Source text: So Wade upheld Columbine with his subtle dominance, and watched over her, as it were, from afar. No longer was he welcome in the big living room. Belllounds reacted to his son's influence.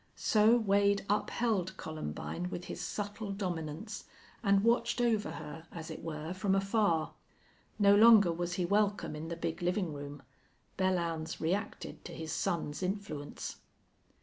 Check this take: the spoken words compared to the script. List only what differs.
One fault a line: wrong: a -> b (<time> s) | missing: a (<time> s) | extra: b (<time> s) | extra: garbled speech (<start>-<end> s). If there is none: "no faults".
no faults